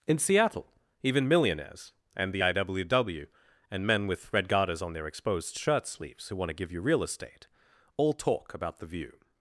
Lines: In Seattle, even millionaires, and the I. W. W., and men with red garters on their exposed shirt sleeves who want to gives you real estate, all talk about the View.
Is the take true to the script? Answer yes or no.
no